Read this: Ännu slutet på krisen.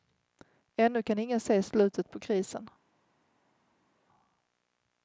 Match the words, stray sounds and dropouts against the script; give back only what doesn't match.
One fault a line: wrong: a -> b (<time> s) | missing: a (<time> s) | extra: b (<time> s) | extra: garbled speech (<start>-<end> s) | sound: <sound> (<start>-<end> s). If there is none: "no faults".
extra: kan ingen se (1.0 s)